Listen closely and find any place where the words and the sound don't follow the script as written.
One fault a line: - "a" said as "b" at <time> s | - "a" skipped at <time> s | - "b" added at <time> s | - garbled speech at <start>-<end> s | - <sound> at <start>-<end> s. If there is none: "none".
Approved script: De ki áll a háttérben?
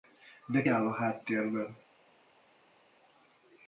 - "ki" skipped at 0.7 s